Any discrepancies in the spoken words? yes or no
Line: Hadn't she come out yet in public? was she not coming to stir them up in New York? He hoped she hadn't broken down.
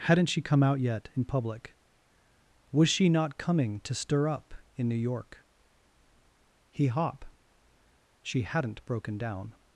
yes